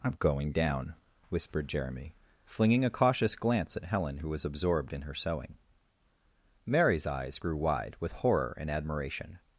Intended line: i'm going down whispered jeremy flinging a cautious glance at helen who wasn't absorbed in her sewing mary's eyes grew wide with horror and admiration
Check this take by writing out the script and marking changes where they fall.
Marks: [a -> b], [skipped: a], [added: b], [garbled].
i'm going down whispered jeremy flinging a cautious glance at helen who [wasn't -> was] absorbed in her sewing mary's eyes grew wide with horror and admiration